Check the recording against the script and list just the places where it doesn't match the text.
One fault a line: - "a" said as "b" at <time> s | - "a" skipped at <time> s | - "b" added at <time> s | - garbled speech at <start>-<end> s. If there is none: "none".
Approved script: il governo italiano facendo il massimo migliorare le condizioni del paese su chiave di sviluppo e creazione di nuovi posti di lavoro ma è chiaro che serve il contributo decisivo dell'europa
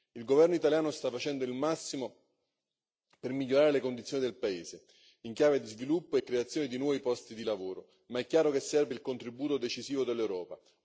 - "sta" added at 0.9 s
- "per" added at 3.2 s
- "su" said as "in" at 5.2 s